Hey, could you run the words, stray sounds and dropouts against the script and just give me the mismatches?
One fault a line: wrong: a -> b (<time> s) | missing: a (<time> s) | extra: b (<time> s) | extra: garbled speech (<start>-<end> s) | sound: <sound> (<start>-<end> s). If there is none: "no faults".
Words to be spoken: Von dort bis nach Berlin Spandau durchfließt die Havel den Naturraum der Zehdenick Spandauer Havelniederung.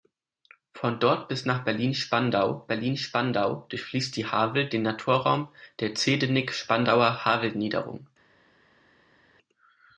extra: Berlin Spandau (2.7 s)